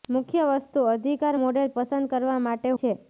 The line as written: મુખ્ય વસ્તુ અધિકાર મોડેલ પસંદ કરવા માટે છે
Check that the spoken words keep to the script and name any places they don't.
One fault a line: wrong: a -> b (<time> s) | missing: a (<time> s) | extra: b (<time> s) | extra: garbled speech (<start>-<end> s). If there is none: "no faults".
no faults